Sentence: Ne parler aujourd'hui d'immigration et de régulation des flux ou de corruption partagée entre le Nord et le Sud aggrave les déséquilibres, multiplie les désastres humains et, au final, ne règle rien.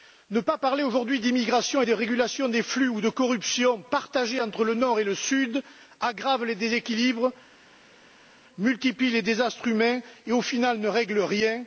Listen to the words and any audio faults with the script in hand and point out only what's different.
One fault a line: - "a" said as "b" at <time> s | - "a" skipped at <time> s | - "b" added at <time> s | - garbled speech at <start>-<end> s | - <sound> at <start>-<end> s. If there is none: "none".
- "pas" added at 0.4 s